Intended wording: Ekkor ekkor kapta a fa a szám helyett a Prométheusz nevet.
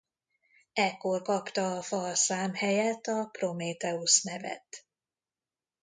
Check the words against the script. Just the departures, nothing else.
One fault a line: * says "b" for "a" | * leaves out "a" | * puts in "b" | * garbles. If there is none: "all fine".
* leaves out "ekkor"